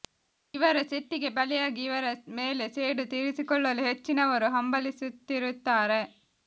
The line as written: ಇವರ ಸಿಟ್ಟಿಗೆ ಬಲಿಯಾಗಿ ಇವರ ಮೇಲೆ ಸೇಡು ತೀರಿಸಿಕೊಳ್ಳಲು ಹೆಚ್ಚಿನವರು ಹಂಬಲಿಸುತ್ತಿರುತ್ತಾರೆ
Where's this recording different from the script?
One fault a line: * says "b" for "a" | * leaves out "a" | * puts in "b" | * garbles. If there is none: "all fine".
all fine